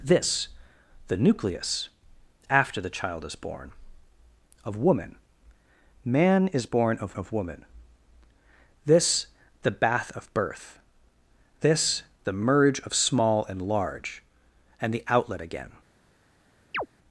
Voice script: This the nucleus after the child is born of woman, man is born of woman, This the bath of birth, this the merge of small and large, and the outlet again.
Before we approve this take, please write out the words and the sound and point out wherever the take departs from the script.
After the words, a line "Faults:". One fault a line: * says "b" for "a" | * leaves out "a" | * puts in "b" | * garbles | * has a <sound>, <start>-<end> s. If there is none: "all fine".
This the nucleus after the child is born of woman, man is born of of woman, This the bath of birth, this the merge of small and large, and the outlet again.
Faults:
* puts in "of"
* has a chirp, 16.7-16.9 s